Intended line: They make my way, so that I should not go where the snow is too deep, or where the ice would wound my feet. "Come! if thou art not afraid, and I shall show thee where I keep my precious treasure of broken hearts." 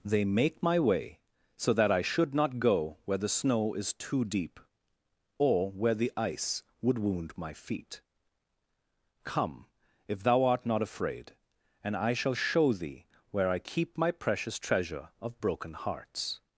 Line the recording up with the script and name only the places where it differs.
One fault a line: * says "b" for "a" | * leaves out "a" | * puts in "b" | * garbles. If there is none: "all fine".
all fine